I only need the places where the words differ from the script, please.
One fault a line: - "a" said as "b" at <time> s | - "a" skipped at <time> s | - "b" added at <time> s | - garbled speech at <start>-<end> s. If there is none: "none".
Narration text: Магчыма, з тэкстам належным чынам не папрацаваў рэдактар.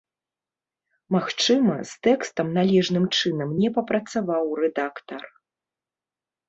none